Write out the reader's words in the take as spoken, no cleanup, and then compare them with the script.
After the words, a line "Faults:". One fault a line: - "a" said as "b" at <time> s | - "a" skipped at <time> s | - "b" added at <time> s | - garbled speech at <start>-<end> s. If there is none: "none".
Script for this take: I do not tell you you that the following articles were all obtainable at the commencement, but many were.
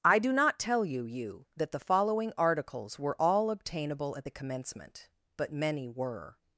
I do not tell you you that the following articles were all obtainable at the commencement, but many were.
Faults:
none